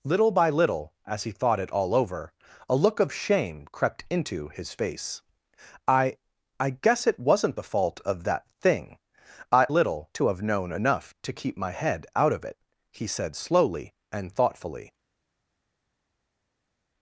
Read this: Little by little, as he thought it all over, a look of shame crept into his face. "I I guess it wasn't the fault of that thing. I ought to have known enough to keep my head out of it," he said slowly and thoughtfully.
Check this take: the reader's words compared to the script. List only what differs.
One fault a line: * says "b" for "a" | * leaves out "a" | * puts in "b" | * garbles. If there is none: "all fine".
* says "little" for "ought"